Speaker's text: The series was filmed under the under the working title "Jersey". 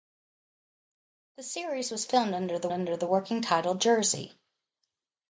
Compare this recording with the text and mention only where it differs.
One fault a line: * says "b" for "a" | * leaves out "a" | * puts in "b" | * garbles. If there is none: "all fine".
all fine